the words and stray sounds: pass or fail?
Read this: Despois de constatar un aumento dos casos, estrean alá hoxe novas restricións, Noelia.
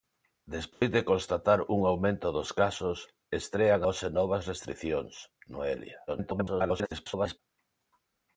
fail